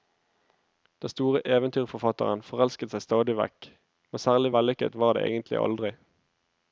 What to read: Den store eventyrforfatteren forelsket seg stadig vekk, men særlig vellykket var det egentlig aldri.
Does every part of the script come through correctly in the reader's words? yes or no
yes